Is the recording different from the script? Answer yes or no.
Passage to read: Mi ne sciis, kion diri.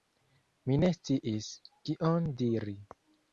no